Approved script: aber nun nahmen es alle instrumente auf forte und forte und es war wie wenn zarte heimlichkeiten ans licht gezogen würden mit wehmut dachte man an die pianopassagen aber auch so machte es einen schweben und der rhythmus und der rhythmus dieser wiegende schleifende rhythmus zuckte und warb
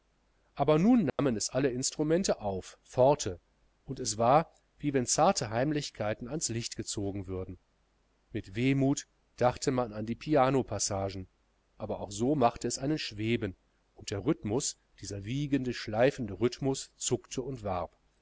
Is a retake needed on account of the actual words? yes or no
yes